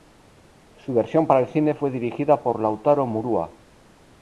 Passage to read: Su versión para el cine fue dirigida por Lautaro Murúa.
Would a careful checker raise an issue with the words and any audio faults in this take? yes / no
no